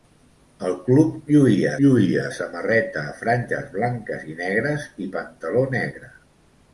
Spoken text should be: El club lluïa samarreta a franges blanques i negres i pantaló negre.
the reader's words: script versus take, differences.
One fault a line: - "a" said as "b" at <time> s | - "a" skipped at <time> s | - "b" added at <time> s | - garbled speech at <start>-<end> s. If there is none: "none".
- "lluïa" added at 1.8 s